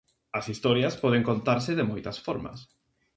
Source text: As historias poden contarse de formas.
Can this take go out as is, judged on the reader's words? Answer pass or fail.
fail